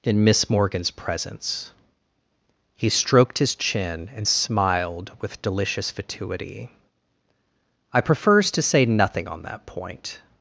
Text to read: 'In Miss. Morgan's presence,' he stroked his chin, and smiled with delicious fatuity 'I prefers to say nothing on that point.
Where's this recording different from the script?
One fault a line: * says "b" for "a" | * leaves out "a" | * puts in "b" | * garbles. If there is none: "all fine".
all fine